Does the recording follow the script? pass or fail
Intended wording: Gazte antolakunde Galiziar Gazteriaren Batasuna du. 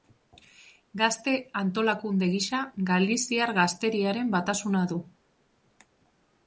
fail